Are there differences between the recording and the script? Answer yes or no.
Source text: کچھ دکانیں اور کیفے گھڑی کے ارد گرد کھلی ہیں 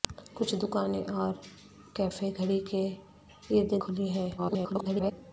yes